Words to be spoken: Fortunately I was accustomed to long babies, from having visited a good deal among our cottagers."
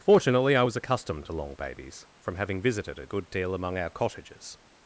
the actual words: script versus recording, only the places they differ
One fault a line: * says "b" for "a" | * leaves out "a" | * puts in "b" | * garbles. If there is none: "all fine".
all fine